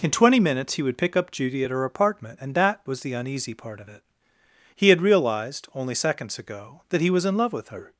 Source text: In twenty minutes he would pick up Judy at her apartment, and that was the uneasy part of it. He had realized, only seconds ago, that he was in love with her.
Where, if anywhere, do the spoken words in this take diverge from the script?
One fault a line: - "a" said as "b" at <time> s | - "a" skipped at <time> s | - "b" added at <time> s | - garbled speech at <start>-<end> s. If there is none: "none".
none